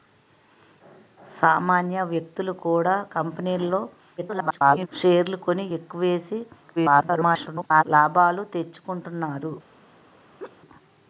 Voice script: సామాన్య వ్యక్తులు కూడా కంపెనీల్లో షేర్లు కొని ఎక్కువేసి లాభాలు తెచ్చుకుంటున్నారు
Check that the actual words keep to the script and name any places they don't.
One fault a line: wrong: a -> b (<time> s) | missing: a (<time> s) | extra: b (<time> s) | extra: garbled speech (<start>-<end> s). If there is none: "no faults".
extra: garbled speech (4.2-4.9 s)
extra: garbled speech (6.8-7.8 s)